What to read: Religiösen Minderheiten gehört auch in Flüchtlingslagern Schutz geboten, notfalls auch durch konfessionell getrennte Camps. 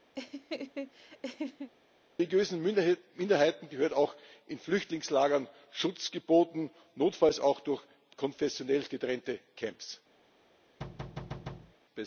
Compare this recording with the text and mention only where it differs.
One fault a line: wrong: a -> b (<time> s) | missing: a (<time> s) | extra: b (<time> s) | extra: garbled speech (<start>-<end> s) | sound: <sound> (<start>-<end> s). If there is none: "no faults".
sound: laugh (0.2-1.7 s)
sound: thud (10.8-11.7 s)